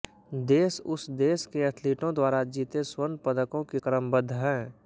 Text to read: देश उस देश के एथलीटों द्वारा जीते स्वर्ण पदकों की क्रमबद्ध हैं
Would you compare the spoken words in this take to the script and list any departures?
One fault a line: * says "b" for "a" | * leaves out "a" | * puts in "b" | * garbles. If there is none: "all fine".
all fine